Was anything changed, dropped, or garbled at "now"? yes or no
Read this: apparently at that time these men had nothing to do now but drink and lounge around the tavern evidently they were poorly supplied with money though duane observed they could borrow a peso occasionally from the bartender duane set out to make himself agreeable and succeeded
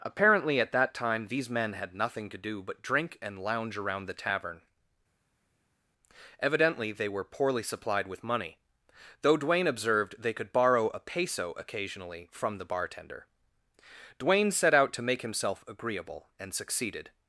yes